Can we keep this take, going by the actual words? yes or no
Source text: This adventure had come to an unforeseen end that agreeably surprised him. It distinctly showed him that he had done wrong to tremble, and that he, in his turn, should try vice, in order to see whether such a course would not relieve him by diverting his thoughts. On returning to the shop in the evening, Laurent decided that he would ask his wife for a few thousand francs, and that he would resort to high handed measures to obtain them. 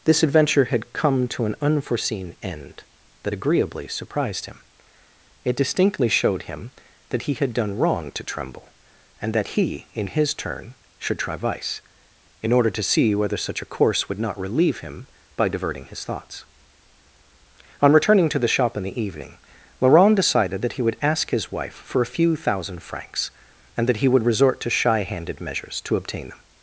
no